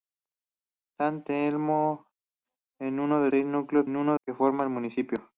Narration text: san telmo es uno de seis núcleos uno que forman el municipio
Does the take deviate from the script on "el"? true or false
false